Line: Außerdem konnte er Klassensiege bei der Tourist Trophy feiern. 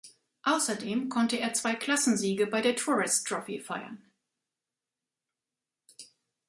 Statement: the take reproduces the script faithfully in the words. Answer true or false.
false